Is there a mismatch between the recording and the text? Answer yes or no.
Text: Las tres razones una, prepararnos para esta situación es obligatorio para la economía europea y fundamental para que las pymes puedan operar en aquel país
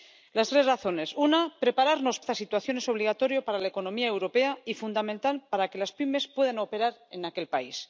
yes